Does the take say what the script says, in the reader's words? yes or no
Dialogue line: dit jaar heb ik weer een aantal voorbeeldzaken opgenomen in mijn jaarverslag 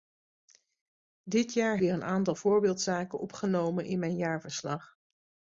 no